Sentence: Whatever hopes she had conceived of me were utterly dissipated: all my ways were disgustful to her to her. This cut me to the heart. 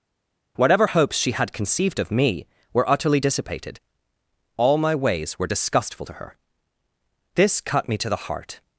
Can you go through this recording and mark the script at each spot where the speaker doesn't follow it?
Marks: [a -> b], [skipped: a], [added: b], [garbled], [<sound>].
Whatever hopes she had conceived of me were utterly dissipated: all my ways were disgustful to her [skipped: to her.] This cut me to the heart.